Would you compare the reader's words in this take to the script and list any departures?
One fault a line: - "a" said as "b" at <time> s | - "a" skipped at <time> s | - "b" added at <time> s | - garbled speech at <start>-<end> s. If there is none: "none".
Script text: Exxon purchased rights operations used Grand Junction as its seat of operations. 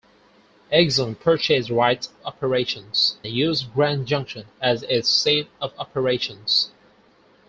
none